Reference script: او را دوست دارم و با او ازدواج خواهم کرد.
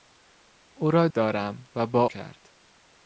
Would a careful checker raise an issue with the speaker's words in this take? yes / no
yes